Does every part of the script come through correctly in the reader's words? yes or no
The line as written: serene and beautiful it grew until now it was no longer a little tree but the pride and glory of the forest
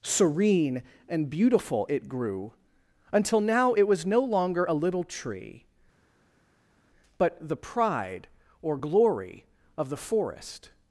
no